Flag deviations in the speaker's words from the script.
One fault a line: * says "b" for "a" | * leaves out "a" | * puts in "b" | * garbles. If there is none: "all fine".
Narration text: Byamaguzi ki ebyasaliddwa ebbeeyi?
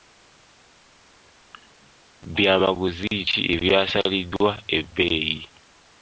all fine